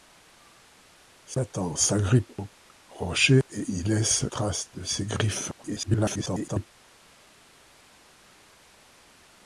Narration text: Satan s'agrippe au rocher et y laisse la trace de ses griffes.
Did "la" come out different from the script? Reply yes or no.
yes